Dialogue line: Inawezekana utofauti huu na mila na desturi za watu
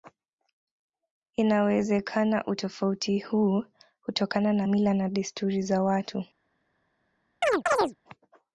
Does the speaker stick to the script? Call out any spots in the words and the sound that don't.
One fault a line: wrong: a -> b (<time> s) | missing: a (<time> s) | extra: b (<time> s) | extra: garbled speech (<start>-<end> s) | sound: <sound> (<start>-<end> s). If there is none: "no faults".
extra: hutokana (4.0 s)
sound: chirp (7.4-8.0 s)